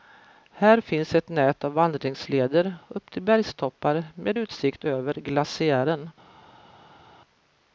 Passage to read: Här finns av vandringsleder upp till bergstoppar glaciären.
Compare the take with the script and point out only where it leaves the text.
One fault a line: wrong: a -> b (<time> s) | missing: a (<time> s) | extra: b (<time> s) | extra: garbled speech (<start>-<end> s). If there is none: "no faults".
extra: ett nät (1.1 s)
extra: med utsikt över (4.1 s)